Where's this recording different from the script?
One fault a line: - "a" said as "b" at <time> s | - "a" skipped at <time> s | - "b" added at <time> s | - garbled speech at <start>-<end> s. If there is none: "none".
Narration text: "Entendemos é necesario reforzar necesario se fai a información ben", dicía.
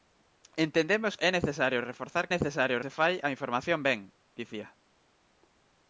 none